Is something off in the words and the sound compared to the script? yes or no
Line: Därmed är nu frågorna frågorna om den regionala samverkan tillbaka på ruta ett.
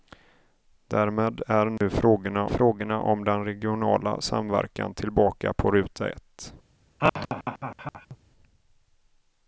yes